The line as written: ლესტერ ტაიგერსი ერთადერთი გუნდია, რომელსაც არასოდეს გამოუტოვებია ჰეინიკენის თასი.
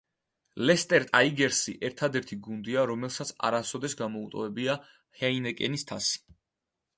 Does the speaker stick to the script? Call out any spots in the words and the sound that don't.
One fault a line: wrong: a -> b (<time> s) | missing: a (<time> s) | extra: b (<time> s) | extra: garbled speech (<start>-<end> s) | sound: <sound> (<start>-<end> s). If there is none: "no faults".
no faults